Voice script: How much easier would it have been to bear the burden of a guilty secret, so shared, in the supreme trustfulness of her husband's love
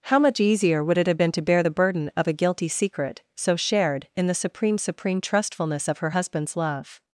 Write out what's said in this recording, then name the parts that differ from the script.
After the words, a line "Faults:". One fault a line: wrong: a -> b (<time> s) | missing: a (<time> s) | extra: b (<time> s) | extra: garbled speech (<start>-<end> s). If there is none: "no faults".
How much easier would it have been to bear the burden of a guilty secret, so shared, in the supreme supreme trustfulness of her husband's love
Faults:
extra: supreme (4.8 s)